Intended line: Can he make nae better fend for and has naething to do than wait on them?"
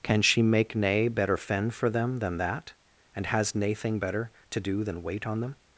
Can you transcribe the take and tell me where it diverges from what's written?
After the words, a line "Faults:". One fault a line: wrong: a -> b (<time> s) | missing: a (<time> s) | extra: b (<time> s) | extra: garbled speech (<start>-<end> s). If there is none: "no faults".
Can she make nae better fend for them than that, and has naething better to do than wait on them?"
Faults:
wrong: he -> she (0.2 s)
extra: them than that (1.9 s)
extra: better (4.0 s)